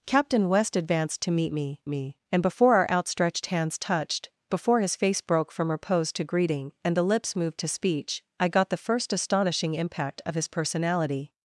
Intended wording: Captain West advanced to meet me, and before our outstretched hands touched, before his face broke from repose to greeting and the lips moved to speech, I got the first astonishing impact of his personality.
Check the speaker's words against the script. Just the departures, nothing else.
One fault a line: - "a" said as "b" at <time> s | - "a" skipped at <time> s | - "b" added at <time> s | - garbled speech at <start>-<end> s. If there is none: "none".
- "me" added at 1.9 s